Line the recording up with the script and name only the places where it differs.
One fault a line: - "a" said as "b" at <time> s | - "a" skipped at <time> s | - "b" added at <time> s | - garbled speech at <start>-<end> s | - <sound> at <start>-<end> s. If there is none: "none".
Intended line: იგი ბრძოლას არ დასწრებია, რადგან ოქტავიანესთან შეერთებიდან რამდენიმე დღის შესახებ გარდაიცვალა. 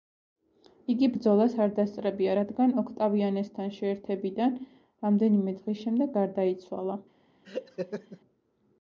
- "შესახებ" said as "შემდეგ" at 5.9 s
- laugh at 7.4-8.2 s